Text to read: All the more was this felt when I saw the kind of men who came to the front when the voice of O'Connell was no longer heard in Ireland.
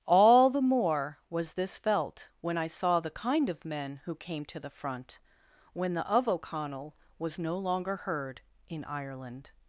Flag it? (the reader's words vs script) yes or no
yes